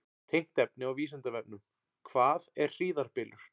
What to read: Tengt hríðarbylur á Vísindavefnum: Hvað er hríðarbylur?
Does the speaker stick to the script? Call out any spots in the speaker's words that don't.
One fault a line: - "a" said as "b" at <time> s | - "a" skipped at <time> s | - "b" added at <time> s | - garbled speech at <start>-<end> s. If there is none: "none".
- "hríðarbylur" said as "efni" at 0.6 s